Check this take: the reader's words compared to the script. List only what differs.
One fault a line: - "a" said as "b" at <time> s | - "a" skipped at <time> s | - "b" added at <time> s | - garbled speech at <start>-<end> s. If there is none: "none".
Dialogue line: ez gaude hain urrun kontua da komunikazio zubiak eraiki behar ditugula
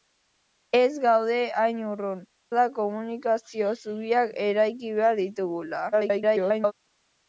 - "kontua" skipped at 2.2 s
- garbled speech at 5.9-6.7 s